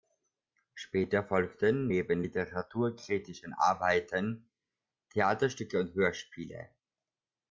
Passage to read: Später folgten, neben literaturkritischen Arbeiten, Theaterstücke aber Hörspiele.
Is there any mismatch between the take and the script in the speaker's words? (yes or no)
yes